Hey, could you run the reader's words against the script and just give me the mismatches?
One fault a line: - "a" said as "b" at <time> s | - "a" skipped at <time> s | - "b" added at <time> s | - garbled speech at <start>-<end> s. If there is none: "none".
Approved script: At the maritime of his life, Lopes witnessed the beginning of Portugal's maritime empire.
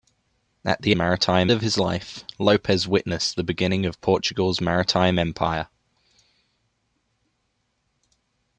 none